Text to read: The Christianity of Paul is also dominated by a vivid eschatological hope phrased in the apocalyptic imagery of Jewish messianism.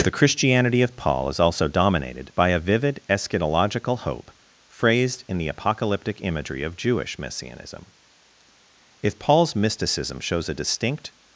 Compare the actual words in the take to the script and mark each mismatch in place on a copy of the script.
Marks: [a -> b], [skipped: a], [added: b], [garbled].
The Christianity of Paul is also dominated by a vivid eschatological hope phrased in the apocalyptic imagery of Jewish messianism. [added: If Paul's mysticism shows a distinct]